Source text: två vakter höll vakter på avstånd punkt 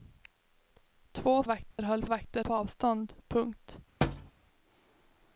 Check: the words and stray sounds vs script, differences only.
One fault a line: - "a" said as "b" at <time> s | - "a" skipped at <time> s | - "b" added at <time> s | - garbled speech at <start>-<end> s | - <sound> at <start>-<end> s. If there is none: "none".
- dropout at 1.7-1.8 s
- thud at 4.0-4.3 s